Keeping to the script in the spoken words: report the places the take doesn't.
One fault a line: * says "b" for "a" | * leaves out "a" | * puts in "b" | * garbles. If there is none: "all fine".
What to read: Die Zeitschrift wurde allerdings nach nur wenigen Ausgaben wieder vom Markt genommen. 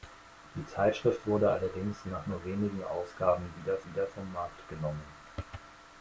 * puts in "wieder"